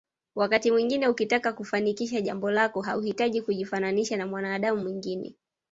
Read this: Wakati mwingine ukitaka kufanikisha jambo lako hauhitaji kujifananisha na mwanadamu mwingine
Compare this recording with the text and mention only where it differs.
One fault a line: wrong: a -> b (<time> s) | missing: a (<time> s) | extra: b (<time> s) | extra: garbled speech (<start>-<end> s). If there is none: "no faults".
no faults